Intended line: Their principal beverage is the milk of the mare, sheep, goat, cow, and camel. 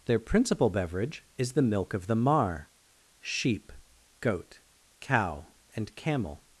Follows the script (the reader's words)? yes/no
no